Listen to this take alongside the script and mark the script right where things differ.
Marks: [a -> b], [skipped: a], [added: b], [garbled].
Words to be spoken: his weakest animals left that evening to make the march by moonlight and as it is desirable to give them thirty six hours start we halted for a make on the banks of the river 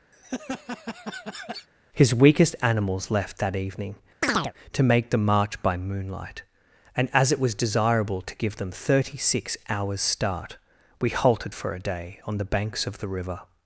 his weakest animals left that evening to make the march by moonlight and as it [is -> was] desirable to give them thirty six hours start we halted for a [make -> day] on the banks of the river